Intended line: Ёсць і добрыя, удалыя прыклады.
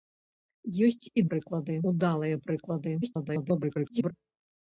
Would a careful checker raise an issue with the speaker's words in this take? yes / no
yes